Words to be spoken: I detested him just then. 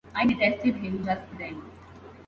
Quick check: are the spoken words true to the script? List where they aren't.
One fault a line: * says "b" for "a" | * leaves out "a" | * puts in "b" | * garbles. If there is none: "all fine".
all fine